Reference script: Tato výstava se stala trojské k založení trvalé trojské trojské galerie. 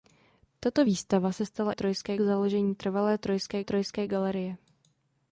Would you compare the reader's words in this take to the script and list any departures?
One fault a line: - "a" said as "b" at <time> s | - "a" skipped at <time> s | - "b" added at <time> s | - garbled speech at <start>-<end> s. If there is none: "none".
none